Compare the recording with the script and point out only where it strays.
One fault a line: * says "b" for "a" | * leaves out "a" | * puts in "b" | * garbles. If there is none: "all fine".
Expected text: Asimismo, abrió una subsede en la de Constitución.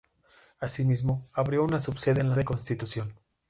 all fine